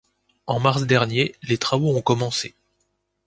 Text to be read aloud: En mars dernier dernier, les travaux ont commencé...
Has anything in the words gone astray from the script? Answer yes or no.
yes